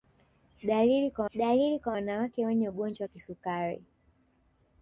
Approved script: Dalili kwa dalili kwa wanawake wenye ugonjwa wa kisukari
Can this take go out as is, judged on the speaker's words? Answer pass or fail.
pass